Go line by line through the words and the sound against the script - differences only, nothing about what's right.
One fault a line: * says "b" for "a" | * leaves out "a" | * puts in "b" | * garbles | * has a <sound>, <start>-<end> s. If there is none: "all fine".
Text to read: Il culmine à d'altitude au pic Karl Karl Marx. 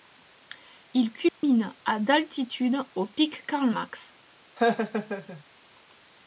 * has a dropout, 1.3-1.4 s
* leaves out "Karl"
* has a laugh, 4.6-5.4 s